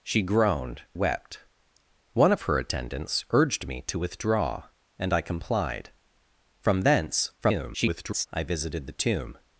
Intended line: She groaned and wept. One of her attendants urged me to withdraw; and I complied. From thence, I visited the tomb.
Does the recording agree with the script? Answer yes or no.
no